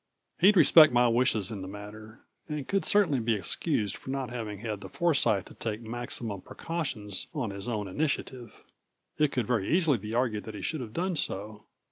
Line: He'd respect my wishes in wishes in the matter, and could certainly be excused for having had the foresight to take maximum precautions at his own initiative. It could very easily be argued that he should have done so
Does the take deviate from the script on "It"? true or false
false